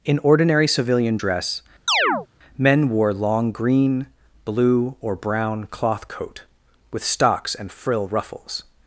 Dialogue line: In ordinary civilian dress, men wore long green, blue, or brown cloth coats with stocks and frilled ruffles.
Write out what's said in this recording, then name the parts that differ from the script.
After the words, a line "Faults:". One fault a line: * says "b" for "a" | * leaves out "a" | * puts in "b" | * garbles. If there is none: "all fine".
In ordinary civilian dress, men wore long green, blue, or brown cloth coat with stocks and frill ruffles.
Faults:
* says "coat" for "coats"
* says "frill" for "frilled"